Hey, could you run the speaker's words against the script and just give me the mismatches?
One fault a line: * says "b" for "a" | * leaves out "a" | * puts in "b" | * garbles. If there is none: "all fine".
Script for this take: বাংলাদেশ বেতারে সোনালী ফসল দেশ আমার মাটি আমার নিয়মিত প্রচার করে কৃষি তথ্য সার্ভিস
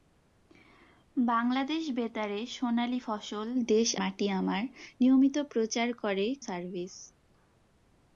* leaves out "আমার"
* leaves out "কৃষি তথ্য"